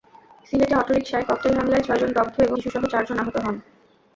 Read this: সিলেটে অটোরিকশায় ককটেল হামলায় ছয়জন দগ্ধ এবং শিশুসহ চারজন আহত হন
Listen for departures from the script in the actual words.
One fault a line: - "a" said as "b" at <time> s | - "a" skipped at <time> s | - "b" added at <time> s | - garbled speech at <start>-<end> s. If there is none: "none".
none